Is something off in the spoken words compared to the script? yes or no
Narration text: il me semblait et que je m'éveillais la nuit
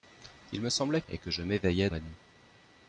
no